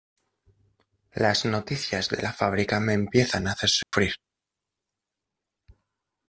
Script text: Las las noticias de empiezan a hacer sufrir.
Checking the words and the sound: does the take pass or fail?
fail